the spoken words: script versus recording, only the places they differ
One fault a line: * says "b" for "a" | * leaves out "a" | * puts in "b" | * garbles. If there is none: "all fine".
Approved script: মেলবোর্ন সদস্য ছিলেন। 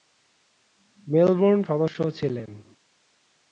all fine